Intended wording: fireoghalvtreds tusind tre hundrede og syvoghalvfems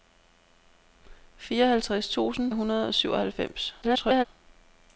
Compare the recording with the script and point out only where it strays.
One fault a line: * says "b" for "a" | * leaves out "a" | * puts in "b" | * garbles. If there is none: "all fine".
* leaves out "tre"
* garbles